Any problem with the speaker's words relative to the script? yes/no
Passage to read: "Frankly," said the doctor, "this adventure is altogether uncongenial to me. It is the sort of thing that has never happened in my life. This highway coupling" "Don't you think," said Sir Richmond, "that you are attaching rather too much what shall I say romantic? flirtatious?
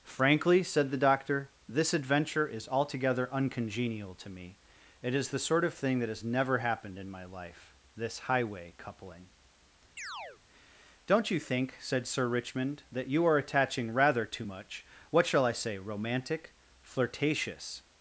no